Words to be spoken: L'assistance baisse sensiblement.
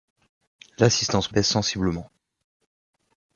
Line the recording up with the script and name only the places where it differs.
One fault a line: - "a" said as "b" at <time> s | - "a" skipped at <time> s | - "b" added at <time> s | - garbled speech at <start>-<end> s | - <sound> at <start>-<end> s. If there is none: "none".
none